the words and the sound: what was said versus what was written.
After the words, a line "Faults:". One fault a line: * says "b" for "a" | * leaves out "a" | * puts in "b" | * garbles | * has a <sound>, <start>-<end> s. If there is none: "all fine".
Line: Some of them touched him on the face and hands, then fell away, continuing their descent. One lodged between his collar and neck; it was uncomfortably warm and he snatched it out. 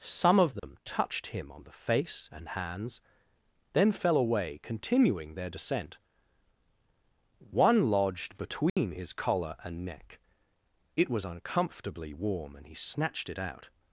Some of them touched him on the face and hands, then fell away, continuing their descent. One lodged between his collar and neck; it was uncomfortably warm and he snatched it out.
Faults:
* has a dropout, 0.6-0.6 s
* has a dropout, 8.7-8.8 s